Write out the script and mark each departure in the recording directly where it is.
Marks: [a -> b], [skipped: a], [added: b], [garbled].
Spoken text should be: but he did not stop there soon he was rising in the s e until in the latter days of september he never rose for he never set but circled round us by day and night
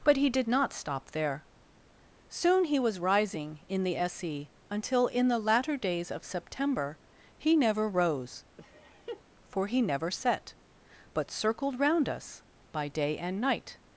but he did not stop there soon he was rising in the s e until in the latter days of september he never rose for he never set but circled round us by day and night